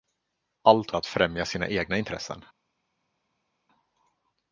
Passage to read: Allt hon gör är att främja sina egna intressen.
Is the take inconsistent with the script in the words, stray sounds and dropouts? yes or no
yes